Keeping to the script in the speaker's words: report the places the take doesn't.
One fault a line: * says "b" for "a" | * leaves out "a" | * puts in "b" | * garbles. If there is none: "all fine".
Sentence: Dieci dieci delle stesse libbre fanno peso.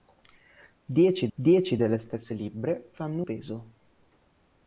all fine